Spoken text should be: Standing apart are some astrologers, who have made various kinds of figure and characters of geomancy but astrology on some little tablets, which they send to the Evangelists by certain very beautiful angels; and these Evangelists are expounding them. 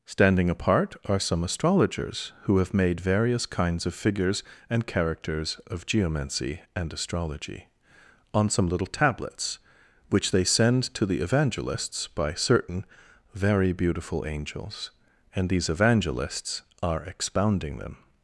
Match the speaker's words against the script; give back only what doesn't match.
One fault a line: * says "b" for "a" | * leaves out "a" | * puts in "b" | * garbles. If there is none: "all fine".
* says "figures" for "figure"
* says "and" for "but"